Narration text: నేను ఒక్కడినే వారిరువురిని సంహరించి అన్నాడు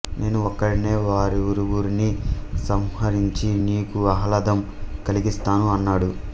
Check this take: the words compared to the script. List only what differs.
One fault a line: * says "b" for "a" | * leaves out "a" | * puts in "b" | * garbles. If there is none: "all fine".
* puts in "నీకు ఆహ్లాదం కలిగిస్తాను"